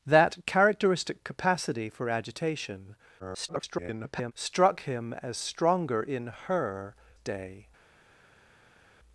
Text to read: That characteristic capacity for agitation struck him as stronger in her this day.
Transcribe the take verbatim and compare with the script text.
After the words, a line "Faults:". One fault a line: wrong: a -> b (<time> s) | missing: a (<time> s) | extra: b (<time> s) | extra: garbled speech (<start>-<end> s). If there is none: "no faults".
That characteristic capacity for agitation [garbled] struck him as stronger in her day.
Faults:
extra: garbled speech (3.2-4.3 s)
missing: this (6.9 s)